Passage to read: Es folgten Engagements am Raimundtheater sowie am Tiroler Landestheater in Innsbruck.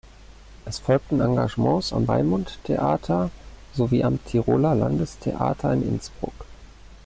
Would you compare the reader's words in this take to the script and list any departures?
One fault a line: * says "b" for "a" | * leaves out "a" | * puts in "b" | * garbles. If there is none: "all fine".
all fine